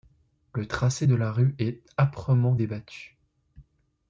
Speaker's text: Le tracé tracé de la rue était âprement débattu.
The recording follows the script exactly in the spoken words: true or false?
false